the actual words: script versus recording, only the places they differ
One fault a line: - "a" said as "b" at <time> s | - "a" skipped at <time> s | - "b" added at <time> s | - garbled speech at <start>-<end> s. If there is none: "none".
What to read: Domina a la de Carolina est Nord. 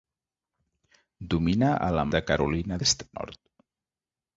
none